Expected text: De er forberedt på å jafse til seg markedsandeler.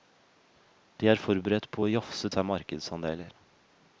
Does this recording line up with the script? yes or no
no